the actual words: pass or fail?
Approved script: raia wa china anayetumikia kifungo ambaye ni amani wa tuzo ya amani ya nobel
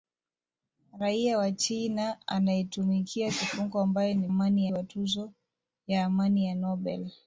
pass